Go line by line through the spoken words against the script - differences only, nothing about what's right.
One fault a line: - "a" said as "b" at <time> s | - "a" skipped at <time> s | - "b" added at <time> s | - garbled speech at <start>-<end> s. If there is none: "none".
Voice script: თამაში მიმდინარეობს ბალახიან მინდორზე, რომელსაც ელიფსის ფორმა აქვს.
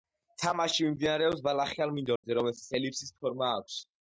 none